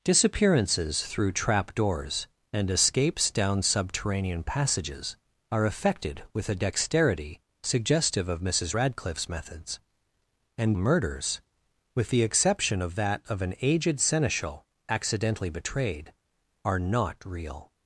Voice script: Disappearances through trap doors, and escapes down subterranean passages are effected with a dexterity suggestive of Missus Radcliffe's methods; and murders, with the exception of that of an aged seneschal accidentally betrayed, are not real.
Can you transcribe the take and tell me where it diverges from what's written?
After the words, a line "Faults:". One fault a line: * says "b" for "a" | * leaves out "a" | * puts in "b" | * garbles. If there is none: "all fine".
Disappearances through trap doors, and escapes down subterranean passages are effected with a dexterity suggestive of Missus Radcliffe's methods; and murders, with the exception of that of an aged seneschal accidentally betrayed, are not real.
Faults:
all fine